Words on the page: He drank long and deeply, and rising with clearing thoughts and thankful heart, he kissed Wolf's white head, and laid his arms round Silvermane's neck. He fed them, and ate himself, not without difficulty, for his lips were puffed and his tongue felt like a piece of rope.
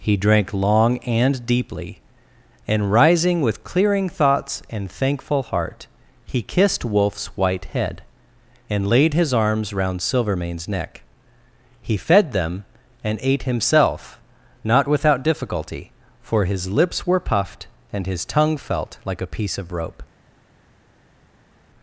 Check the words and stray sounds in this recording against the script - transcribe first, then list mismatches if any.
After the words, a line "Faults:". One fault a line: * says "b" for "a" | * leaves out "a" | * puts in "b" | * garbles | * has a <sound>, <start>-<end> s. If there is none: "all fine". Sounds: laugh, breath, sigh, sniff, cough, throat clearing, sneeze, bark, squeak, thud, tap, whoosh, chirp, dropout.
He drank long and deeply, and rising with clearing thoughts and thankful heart, he kissed Wolf's white head, and laid his arms round Silvermane's neck. He fed them, and ate himself, not without difficulty, for his lips were puffed and his tongue felt like a piece of rope.
Faults:
all fine